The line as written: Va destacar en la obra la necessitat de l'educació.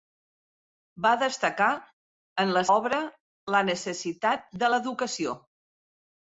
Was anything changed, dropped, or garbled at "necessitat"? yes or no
no